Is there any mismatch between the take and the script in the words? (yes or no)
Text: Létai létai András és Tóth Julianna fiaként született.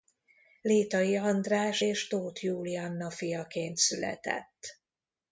yes